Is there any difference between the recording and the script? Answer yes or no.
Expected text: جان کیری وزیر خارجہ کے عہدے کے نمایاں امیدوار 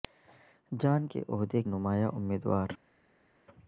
yes